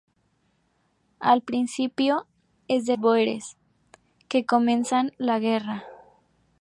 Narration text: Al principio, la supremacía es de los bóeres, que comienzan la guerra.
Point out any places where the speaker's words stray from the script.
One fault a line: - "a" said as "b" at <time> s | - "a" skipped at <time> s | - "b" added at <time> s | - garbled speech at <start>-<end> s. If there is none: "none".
- "la supremacía" skipped at 2.2 s
- "los" skipped at 3.0 s